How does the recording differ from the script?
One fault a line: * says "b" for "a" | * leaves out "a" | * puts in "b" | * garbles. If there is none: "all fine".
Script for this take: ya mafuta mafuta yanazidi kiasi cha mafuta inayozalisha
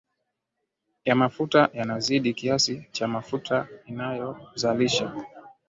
* leaves out "mafuta"